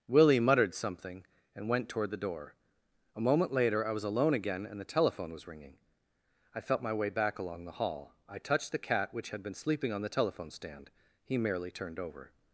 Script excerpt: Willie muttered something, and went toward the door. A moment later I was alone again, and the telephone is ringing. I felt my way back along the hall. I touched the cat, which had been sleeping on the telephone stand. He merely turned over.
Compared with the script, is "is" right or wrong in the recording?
wrong